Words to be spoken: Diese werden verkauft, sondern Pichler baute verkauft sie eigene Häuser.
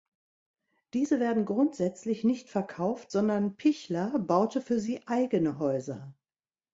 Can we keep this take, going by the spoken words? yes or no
no